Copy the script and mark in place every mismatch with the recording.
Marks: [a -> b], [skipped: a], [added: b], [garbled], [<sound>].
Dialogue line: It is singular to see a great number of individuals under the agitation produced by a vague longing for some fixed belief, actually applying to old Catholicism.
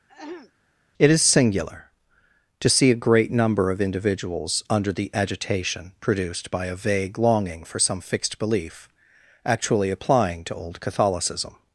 [throat clearing] It is singular to see a great number of individuals under the agitation produced by a vague longing for some fixed belief, actually applying to old Catholicism.